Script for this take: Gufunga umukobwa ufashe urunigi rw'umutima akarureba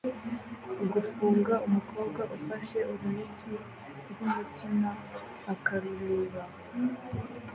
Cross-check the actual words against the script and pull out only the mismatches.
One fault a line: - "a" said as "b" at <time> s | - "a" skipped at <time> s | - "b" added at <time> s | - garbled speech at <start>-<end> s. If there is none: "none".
none